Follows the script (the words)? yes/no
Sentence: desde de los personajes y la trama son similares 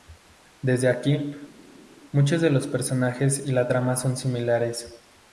no